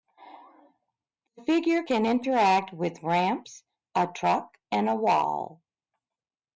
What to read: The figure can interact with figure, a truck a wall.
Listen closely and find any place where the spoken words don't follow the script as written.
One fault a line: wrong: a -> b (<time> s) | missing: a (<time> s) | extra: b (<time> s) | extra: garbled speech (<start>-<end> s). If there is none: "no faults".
wrong: figure -> ramps (3.0 s)
extra: and (4.7 s)